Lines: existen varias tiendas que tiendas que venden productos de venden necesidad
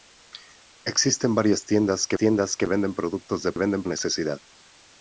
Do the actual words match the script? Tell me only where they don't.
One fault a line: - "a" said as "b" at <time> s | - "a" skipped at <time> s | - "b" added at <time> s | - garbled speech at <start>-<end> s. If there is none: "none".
none